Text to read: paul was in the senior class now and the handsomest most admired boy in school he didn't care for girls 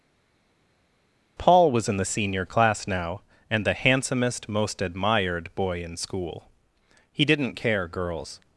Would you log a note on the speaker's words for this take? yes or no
yes